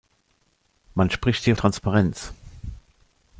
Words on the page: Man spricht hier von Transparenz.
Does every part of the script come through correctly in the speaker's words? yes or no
no